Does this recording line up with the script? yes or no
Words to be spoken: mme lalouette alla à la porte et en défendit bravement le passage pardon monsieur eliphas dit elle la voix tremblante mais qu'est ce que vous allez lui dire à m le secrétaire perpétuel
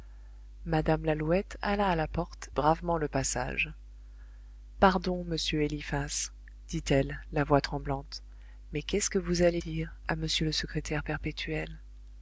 no